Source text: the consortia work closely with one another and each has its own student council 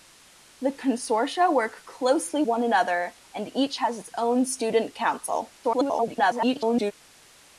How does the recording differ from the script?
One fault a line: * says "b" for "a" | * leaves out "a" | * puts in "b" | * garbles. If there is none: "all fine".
* leaves out "with"
* garbles